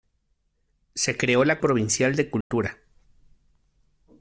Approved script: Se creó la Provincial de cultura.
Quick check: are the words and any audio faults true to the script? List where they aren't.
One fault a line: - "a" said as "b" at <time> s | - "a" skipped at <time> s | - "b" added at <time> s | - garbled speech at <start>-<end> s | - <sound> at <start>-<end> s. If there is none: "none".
- dropout at 2.4-2.5 s